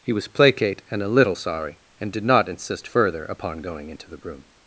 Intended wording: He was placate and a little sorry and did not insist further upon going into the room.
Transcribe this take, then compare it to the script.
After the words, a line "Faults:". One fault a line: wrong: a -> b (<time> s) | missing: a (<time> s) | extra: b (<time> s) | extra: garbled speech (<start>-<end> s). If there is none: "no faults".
He was placate and a little sorry and did not insist further upon going into the room.
Faults:
no faults